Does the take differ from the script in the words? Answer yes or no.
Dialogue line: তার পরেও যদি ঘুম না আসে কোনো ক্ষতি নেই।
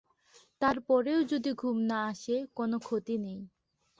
no